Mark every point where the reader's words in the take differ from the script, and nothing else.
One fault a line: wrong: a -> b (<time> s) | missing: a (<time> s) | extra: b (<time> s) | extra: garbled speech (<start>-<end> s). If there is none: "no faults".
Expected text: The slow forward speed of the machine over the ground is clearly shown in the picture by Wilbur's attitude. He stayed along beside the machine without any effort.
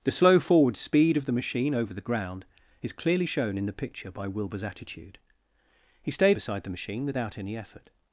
missing: along (6.4 s)